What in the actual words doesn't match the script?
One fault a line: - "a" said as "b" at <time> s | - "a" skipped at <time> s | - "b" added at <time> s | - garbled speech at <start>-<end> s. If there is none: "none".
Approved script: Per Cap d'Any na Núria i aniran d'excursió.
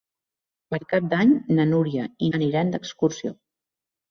none